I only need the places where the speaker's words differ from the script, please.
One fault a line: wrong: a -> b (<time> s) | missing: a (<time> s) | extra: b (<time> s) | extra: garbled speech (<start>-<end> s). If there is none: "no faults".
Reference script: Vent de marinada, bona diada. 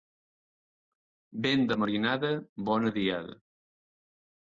no faults